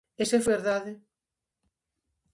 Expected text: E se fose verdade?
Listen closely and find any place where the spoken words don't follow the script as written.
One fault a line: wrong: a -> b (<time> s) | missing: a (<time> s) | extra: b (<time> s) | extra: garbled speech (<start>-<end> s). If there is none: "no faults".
missing: fose (0.4 s)